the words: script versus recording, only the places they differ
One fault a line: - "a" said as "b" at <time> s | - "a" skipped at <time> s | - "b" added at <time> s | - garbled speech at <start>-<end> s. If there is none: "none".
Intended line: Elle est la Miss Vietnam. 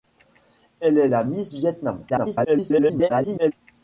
- garbled speech at 2.1-3.5 s